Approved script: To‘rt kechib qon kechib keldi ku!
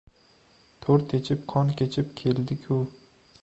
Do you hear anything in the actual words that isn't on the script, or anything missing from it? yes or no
no